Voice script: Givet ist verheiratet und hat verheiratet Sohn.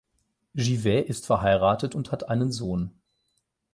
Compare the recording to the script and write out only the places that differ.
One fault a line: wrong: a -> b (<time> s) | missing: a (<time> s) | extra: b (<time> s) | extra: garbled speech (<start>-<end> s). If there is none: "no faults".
wrong: verheiratet -> einen (2.3 s)